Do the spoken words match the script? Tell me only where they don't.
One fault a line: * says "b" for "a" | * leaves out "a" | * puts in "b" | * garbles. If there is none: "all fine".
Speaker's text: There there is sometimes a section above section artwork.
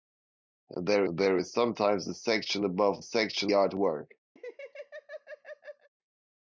all fine